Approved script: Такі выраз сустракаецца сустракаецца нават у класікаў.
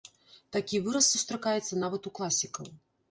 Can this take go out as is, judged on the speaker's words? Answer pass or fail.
fail